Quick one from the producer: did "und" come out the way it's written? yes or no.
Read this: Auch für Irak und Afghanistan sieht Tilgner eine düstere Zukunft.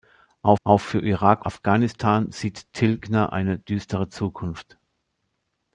no